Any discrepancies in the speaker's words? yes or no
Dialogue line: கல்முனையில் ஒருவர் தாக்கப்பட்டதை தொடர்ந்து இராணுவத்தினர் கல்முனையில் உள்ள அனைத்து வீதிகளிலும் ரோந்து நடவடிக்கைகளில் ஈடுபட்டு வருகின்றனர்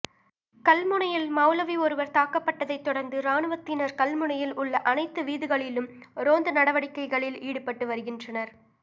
yes